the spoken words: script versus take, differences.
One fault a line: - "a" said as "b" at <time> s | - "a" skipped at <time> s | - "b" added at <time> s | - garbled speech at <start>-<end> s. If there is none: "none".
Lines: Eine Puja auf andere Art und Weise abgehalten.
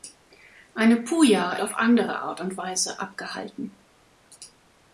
none